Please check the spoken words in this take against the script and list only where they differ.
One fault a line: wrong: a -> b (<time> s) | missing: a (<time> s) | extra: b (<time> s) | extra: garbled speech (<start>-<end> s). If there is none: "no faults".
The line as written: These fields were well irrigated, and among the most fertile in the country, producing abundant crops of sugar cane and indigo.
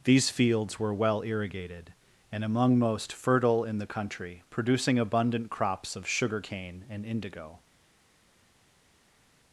missing: the (2.8 s)